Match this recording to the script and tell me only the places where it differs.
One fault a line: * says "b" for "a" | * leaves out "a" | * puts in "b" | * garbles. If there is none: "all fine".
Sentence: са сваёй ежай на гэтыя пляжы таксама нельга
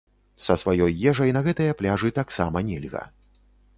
all fine